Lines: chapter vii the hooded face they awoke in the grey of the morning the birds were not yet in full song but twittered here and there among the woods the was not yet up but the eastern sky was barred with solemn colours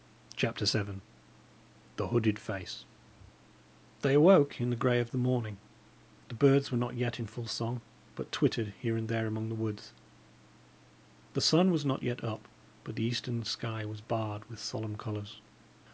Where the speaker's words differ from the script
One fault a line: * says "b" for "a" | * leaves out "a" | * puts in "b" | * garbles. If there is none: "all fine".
* puts in "sun"